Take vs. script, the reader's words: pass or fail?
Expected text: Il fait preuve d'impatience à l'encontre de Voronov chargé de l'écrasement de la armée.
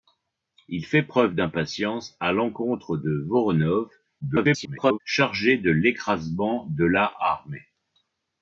fail